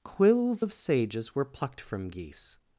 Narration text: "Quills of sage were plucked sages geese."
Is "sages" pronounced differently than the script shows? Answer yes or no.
yes